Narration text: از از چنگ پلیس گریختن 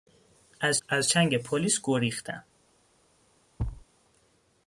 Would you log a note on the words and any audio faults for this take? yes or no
yes